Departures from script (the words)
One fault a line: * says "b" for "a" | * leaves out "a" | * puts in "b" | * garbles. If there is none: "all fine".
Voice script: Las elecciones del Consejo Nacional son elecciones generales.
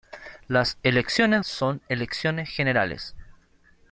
* leaves out "del Consejo Nacional"